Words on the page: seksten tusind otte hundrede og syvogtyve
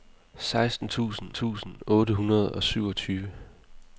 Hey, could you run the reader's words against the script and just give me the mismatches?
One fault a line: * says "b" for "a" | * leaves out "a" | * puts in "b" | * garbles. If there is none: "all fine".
* puts in "tusind"